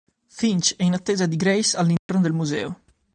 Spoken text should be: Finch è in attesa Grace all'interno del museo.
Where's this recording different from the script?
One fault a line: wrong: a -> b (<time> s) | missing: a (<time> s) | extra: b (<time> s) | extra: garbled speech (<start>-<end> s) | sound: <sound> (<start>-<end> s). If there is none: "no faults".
extra: di (1.3 s)
sound: dropout (2.0-2.1 s)